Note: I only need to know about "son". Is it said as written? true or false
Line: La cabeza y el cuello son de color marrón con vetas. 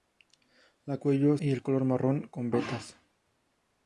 false